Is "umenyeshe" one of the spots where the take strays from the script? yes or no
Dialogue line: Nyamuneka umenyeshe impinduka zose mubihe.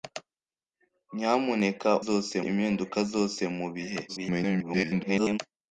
yes